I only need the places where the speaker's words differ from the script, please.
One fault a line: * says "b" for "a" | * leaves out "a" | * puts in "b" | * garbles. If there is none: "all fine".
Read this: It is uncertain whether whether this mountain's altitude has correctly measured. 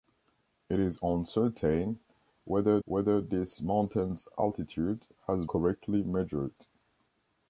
all fine